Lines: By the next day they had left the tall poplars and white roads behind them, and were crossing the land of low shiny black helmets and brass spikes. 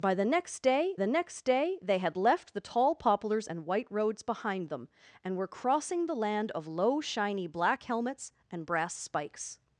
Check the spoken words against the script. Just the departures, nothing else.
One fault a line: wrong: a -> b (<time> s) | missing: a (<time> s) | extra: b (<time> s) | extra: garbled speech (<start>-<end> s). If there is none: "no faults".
extra: the next day (1.0 s)